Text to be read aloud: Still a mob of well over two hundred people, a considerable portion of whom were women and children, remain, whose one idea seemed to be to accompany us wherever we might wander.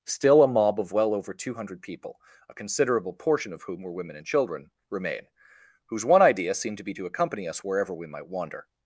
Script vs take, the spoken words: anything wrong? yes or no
no